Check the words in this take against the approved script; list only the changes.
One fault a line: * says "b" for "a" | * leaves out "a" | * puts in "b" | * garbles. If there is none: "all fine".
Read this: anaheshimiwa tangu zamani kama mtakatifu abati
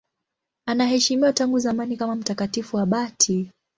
all fine